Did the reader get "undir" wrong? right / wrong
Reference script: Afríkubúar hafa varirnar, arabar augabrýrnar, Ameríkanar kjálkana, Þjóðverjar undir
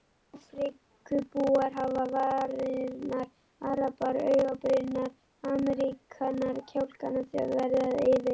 wrong